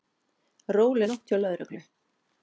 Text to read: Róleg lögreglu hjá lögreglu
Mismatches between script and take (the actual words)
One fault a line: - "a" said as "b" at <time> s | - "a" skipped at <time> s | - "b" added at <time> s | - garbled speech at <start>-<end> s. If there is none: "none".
- "lögreglu" said as "nótt" at 1.1 s